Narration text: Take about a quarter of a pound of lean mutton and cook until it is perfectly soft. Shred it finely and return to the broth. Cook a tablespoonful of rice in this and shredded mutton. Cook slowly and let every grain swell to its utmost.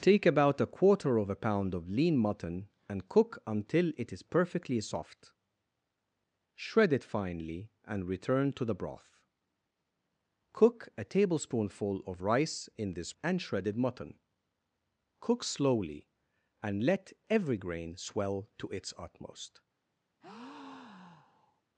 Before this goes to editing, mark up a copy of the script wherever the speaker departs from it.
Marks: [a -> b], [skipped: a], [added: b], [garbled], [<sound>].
Take about a quarter of a pound of lean mutton and cook until it is perfectly soft. Shred it finely and return to the broth. Cook a tablespoonful of rice in this and shredded mutton. Cook slowly and let every grain swell to its utmost. [breath]